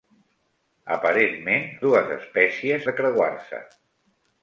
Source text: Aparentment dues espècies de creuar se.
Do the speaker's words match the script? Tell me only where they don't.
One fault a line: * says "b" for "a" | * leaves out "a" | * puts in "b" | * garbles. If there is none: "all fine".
all fine